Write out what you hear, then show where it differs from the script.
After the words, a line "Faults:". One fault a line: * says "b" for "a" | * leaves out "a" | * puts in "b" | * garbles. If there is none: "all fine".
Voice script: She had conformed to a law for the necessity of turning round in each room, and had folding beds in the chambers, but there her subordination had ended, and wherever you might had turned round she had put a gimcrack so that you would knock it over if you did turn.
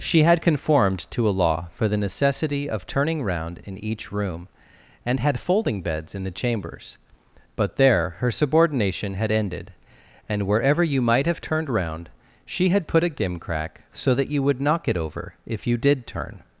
She had conformed to a law for the necessity of turning round in each room, and had folding beds in the chambers, but there her subordination had ended, and wherever you might have turned round she had put a gimcrack so that you would knock it over if you did turn.
Faults:
* says "have" for "had"